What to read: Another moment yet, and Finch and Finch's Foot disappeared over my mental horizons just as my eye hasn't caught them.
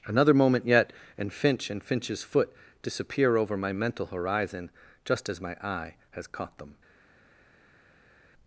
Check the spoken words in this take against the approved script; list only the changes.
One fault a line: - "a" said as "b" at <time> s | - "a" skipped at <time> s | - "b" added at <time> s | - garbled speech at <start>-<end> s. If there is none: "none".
- "disappeared" said as "disappear" at 2.8 s
- "horizons" said as "horizon" at 4.1 s
- "hasn't" said as "has" at 6.1 s